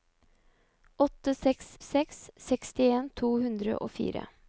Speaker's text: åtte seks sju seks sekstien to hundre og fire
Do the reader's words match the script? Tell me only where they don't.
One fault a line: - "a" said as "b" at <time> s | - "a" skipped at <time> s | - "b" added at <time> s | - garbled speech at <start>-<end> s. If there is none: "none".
- "sju" skipped at 1.8 s